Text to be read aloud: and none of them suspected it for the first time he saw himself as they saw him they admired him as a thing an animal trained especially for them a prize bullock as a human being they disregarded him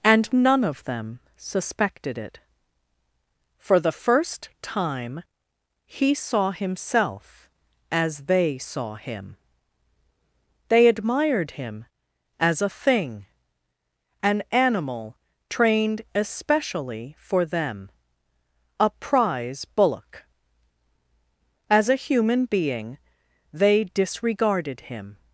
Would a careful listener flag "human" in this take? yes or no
no